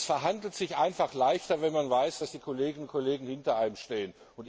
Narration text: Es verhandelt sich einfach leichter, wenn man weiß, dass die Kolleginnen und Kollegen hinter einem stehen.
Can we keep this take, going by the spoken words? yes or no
yes